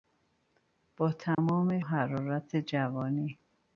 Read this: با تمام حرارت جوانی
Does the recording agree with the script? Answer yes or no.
yes